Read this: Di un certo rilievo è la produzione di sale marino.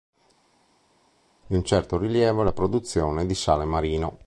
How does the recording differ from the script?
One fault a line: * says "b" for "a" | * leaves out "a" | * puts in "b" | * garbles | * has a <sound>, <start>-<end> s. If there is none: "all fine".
all fine